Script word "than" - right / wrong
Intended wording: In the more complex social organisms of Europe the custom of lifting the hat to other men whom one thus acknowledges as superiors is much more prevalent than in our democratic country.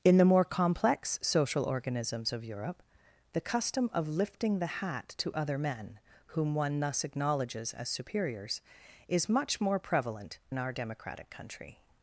wrong